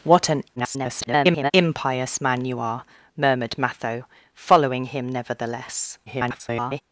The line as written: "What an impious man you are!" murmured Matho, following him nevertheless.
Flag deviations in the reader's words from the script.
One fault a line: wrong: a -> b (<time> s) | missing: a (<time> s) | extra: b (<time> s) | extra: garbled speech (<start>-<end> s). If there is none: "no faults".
extra: garbled speech (0.6-1.5 s)
extra: garbled speech (6.1-6.8 s)